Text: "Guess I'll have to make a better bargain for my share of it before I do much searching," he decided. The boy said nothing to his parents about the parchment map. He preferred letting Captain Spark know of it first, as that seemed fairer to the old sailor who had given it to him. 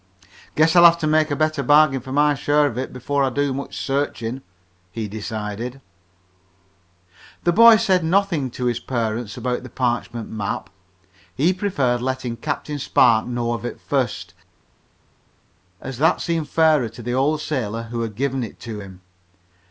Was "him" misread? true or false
false